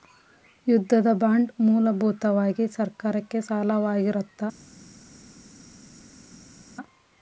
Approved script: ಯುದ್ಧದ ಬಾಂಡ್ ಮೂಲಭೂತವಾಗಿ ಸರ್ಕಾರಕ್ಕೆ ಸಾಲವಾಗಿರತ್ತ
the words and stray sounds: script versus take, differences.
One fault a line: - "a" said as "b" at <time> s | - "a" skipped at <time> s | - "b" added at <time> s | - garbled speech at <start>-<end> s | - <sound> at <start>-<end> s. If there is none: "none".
none